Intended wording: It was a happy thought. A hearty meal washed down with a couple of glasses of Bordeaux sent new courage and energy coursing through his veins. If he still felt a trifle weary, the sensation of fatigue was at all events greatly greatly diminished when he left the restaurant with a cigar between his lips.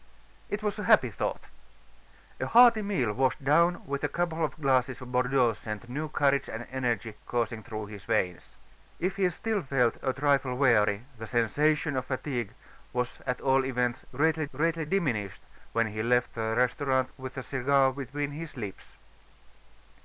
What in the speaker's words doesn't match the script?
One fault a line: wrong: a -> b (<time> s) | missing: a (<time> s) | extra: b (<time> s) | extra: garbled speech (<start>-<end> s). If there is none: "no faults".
no faults